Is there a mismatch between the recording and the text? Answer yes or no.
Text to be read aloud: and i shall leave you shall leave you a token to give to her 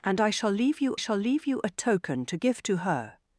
no